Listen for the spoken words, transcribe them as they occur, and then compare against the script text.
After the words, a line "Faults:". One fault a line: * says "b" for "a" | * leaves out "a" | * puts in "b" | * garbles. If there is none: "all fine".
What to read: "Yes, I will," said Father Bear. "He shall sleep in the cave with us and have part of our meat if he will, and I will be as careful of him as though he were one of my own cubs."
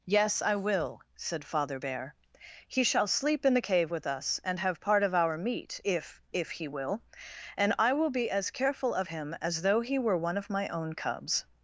"Yes, I will," said Father Bear. "He shall sleep in the cave with us and have part of our meat if if he will, and I will be as careful of him as though he were one of my own cubs."
Faults:
* puts in "if"